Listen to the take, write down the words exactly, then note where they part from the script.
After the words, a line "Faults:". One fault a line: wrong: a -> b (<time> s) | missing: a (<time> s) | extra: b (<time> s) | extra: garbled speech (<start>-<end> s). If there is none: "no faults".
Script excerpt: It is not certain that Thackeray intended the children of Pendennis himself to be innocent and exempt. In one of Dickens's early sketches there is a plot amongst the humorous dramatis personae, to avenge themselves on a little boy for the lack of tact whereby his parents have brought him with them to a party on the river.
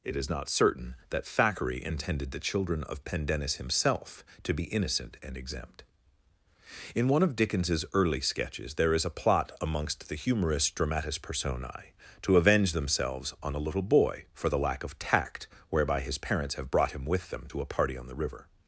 It is not certain that Thackeray intended the children of Pendennis himself to be innocent and exempt. In one of Dickens's early sketches there is a plot amongst the humorous dramatis personae, to avenge themselves on a little boy for the lack of tact whereby his parents have brought him with them to a party on the river.
Faults:
no faults